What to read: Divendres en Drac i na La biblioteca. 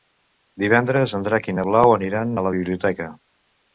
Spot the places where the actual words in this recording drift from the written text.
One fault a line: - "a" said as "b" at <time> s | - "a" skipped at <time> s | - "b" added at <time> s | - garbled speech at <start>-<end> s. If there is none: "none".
- "Blau aniran a" added at 1.7 s